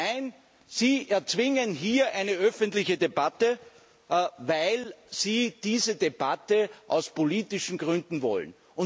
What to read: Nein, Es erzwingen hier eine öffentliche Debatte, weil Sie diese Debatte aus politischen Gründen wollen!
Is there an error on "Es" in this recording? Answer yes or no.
yes